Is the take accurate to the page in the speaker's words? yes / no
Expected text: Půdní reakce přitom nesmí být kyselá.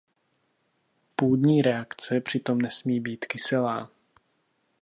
yes